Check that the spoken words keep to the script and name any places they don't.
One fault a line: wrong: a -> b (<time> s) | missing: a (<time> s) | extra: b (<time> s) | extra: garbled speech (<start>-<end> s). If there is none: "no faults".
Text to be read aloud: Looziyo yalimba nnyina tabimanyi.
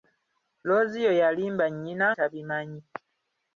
no faults